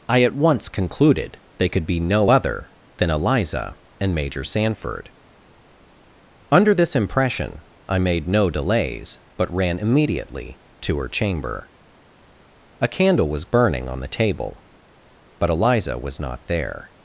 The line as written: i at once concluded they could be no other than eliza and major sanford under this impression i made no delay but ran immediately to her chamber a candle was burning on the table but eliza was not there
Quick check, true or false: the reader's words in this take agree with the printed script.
false